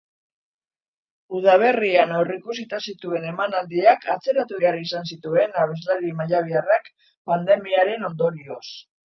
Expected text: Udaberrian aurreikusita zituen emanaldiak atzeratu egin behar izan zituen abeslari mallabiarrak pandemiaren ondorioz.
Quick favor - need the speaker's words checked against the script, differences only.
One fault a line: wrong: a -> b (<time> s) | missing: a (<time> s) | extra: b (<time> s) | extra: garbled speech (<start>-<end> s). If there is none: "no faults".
missing: egin (4.6 s)